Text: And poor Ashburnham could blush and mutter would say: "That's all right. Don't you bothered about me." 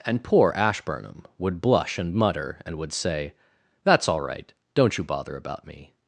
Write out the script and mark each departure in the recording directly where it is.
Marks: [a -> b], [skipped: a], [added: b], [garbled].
And poor Ashburnham [could -> would] blush and mutter [added: and] would say: "That's all right. Don't you [bothered -> bother] about me."